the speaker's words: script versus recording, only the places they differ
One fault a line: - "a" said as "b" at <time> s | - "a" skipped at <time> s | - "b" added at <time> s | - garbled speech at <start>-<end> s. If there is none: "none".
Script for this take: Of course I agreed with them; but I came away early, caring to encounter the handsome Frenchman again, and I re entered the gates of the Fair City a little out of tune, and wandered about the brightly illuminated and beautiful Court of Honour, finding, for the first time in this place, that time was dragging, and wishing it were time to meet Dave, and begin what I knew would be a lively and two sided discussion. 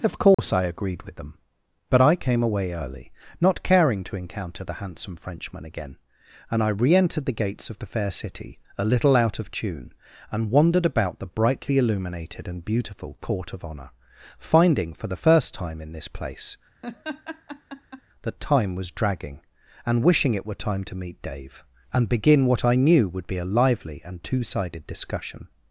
- "not" added at 3.4 s